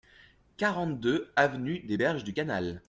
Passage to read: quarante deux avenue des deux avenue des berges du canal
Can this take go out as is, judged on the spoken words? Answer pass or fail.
fail